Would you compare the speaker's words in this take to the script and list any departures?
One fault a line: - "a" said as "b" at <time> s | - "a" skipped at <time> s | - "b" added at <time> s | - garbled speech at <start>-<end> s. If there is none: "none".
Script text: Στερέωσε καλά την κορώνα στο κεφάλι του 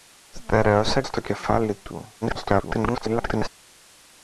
- "καλά την κορώνα" skipped at 1.0 s
- garbled speech at 2.2-3.5 s